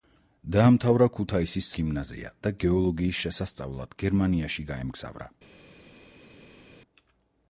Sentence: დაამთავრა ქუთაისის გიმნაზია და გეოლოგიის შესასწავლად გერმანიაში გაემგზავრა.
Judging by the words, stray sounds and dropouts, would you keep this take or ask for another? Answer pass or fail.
pass